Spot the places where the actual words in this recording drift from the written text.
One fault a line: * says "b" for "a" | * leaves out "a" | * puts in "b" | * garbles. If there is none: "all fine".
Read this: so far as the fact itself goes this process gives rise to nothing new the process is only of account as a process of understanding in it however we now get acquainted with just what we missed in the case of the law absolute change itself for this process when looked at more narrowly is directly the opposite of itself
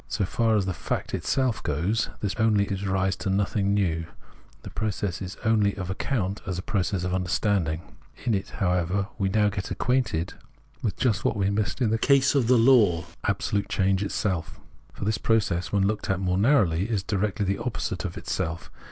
* says "only" for "process"